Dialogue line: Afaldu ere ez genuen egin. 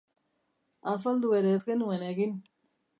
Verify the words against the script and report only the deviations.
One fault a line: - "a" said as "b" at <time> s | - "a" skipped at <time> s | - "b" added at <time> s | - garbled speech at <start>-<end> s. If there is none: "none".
none